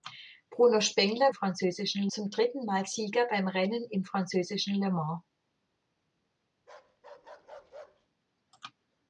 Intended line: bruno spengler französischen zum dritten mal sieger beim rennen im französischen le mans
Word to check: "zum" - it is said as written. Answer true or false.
true